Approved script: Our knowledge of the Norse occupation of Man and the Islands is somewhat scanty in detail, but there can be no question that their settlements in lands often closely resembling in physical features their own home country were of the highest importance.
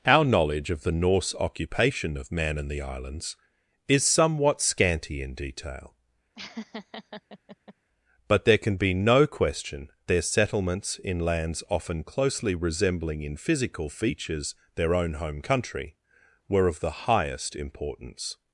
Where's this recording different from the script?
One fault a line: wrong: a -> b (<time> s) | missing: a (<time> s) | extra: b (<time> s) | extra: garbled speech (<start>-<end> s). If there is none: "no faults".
missing: that (9.9 s)